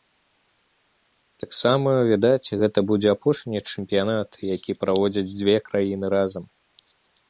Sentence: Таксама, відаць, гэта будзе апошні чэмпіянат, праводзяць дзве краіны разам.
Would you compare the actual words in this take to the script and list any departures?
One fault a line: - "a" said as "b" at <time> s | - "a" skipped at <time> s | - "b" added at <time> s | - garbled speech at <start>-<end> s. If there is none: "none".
- "які" added at 4.6 s